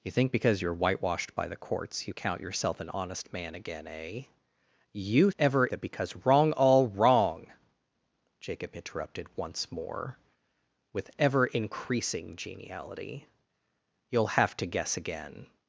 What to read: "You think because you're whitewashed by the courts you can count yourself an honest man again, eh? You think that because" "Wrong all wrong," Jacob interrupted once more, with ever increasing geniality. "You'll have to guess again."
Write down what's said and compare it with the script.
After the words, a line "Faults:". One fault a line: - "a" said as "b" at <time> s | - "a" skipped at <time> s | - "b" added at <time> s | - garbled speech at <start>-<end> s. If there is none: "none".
"You think because you're whitewashed by the courts you count yourself an honest man again, eh? You ever that because" "Wrong all wrong," Jacob interrupted once more, with ever increasing geniality. "You'll have to guess again."
Faults:
- "can" skipped at 2.1 s
- "think" said as "ever" at 5.4 s